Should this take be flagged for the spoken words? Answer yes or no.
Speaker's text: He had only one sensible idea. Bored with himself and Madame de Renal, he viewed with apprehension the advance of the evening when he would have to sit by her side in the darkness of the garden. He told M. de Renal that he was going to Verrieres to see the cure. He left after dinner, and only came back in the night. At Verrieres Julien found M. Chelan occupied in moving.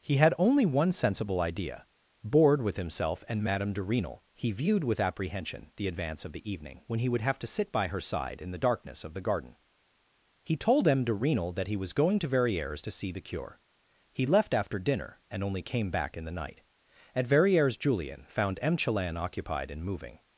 no